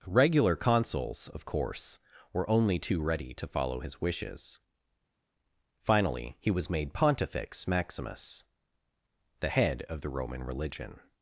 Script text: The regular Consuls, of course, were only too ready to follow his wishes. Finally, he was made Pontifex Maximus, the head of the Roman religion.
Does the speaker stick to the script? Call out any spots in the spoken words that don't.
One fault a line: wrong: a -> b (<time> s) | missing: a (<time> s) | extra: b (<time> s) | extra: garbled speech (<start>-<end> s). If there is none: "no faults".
missing: The (0.1 s)